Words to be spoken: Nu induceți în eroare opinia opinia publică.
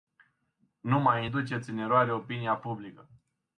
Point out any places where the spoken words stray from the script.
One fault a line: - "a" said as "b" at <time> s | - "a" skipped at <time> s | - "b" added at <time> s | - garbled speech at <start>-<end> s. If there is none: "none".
- "mai" added at 1.0 s
- "opinia" skipped at 2.6 s